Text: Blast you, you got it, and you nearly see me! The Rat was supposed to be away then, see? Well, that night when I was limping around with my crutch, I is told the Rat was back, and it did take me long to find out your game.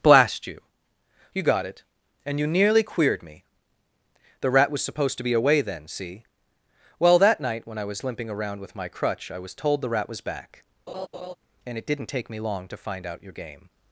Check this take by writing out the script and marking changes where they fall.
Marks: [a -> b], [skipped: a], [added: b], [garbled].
Blast you, you got it, and you nearly [see -> queered] me! The Rat was supposed to be away then, see? Well, that night when I was limping around with my crutch, I [is -> was] told the Rat was back, and it [did -> didn't] take me long to find out your game.